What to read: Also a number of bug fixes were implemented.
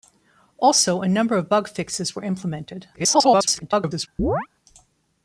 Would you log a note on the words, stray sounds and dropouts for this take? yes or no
yes